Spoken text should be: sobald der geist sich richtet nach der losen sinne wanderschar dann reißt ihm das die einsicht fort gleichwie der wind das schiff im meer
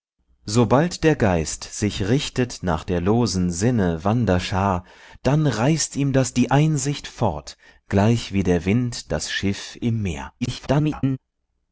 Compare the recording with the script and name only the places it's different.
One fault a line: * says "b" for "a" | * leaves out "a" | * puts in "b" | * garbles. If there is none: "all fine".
* garbles